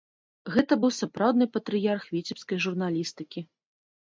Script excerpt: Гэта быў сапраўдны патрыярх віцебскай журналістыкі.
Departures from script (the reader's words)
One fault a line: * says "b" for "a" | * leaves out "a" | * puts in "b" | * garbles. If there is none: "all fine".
all fine